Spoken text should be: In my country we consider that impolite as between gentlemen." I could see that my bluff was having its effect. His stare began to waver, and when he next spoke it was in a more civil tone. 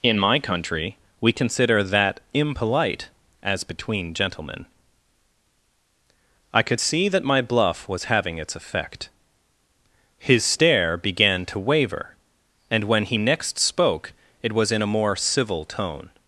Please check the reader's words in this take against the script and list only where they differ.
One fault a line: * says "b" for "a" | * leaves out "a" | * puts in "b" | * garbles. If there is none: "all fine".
all fine